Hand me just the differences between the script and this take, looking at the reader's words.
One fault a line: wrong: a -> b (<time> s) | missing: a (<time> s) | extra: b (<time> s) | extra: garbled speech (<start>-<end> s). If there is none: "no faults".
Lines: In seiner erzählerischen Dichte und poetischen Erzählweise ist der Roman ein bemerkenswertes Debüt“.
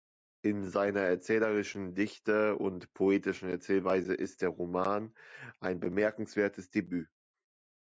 no faults